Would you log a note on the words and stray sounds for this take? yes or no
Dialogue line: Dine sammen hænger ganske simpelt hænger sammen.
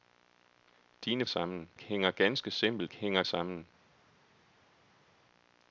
no